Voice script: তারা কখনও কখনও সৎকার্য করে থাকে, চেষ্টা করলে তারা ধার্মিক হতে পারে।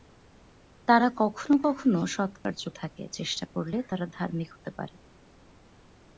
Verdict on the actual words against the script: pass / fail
fail